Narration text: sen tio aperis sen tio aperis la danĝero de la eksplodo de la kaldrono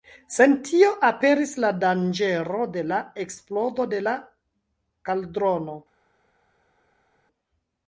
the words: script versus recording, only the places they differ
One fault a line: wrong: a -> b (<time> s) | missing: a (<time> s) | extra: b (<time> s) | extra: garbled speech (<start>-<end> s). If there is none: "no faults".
missing: sen tio aperis (1.5 s)